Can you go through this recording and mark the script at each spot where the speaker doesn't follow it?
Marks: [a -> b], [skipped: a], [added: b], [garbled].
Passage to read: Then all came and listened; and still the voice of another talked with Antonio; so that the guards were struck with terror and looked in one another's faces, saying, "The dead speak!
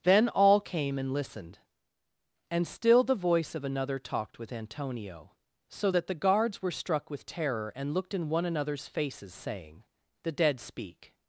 Then all came and listened; and still the voice of another talked with Antonio; so that the guards were struck with terror and looked in one another's faces, saying, "The dead speak!